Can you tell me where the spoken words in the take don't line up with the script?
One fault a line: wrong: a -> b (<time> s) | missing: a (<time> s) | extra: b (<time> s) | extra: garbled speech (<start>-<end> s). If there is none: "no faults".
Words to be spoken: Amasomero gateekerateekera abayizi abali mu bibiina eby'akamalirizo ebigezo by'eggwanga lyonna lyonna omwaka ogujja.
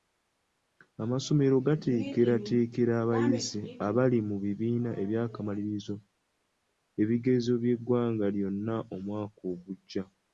missing: lyonna (8.8 s)